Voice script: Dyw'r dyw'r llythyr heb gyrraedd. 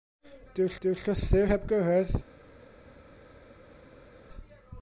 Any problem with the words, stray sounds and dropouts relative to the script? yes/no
no